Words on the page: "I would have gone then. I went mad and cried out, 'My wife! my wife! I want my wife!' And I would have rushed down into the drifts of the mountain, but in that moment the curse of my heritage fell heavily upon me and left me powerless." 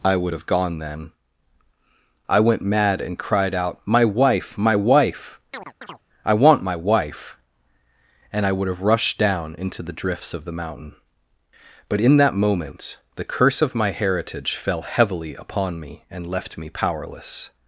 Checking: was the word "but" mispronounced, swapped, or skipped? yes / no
no